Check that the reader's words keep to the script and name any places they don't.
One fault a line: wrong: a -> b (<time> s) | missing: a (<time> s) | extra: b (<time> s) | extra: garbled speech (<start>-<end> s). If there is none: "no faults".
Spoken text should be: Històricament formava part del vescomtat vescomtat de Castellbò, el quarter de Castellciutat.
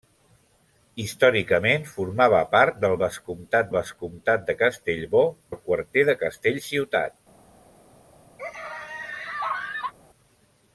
no faults